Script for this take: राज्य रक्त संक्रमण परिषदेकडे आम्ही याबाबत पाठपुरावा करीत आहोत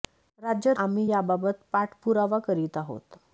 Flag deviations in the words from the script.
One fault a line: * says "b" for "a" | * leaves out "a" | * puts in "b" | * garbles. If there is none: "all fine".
* leaves out "रक्त संक्रमण परिषदेकडे"